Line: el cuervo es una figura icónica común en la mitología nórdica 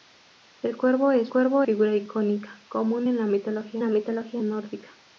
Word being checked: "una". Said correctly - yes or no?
no